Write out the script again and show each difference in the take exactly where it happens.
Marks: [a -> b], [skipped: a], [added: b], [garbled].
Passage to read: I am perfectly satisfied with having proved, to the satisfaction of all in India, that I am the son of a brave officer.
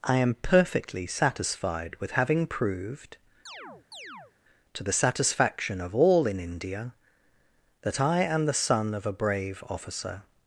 I am perfectly satisfied with having proved, to the satisfaction of all in India, that I am the son of a brave officer.